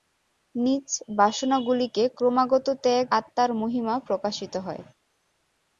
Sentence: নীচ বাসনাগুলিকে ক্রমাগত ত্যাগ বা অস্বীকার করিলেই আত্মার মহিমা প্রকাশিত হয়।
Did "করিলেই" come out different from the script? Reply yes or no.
yes